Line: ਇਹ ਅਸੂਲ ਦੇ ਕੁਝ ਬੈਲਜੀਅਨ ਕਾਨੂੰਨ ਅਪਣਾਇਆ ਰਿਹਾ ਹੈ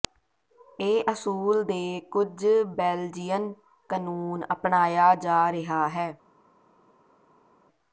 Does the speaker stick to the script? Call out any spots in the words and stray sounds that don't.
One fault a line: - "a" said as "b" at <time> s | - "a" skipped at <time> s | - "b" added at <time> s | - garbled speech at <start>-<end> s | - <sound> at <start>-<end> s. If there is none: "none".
- "ਜਾ" added at 5.2 s